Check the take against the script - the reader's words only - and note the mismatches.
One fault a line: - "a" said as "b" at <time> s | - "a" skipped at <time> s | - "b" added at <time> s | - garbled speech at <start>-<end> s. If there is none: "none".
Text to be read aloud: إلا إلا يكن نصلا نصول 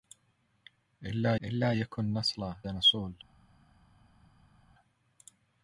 none